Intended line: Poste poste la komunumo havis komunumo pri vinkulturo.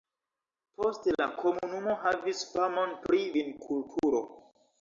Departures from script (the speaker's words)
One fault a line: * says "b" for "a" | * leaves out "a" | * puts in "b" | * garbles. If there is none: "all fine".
* leaves out "poste"
* says "famon" for "komunumo"